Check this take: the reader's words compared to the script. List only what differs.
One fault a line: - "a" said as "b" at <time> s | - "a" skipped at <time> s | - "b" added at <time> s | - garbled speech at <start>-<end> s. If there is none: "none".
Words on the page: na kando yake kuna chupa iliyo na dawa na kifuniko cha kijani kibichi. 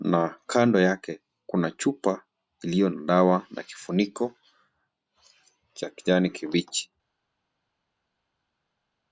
none